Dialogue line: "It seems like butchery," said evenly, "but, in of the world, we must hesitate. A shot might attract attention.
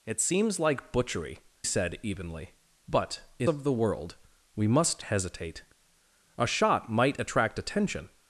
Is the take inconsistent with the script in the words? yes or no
no